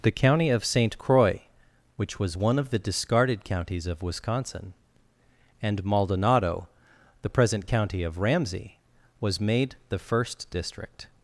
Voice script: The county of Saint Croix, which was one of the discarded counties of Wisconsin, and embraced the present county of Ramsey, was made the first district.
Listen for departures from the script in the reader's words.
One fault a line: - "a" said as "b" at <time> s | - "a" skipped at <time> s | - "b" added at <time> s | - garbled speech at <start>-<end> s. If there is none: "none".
- "embraced" said as "maldonado" at 5.8 s